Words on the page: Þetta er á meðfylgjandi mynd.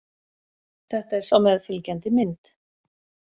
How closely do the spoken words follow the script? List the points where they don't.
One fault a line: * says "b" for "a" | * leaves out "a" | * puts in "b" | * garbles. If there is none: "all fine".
all fine